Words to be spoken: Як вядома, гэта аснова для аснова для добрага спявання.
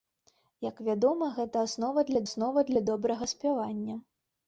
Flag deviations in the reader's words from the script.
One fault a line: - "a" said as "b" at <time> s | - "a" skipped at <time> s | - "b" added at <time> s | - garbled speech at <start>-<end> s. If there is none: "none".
none